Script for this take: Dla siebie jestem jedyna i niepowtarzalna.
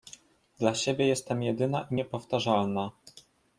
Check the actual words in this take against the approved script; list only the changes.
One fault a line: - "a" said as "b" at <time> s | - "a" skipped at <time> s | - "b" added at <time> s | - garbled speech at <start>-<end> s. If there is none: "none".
none